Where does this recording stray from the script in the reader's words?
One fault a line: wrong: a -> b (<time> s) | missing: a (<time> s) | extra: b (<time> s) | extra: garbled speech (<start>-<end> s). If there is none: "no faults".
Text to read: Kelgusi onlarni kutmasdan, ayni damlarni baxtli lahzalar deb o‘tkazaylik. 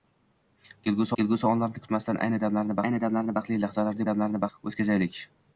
extra: kelgusi (1.2 s)
extra: ayni damlarni (2.9 s)
wrong: deb -> damlarni (4.1 s)